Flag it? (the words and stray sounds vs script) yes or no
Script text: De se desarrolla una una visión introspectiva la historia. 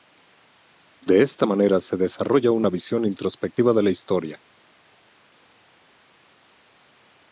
yes